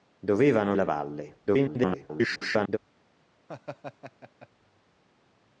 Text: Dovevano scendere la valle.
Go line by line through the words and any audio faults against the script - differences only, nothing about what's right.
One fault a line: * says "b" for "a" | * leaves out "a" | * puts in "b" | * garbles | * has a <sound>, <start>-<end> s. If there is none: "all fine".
* leaves out "scendere"
* garbles
* has a laugh, 3.5-4.5 s